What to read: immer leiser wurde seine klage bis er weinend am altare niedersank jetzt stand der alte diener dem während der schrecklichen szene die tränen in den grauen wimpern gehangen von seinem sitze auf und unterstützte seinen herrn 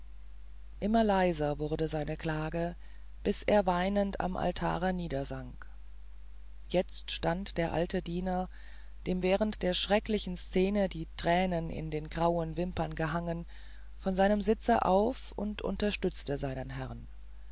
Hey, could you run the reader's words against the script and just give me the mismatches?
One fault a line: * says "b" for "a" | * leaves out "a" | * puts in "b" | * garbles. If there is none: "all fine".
all fine